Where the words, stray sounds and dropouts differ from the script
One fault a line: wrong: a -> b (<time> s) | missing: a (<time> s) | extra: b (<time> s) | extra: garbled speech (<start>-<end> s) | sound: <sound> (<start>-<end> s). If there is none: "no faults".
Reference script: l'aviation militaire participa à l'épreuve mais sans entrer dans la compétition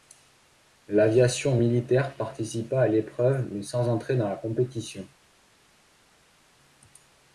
no faults